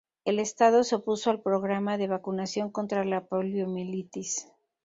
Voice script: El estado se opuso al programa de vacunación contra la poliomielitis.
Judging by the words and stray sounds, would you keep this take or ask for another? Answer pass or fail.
pass